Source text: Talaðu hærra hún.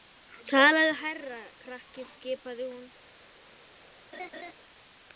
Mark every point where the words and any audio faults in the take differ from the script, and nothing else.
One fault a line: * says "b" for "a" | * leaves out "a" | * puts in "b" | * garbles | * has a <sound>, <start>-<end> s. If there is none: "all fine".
* puts in "krakki skipaði"
* has a laugh, 4.1-4.5 s